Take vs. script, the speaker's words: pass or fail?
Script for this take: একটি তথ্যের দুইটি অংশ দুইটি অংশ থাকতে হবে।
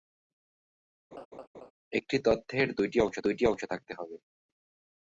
pass